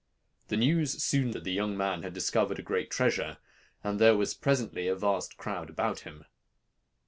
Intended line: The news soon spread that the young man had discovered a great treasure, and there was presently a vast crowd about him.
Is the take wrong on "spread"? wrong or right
wrong